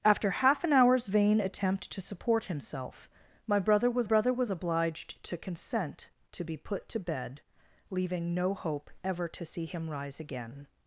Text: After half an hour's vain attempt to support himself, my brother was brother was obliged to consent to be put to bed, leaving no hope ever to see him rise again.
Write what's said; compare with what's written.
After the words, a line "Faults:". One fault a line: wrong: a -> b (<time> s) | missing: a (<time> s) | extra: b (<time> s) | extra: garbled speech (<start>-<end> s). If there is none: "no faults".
After half an hour's vain attempt to support himself, my brother was brother was obliged to consent to be put to bed, leaving no hope ever to see him rise again.
Faults:
no faults